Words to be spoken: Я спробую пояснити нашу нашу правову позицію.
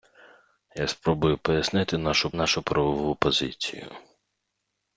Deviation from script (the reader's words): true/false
false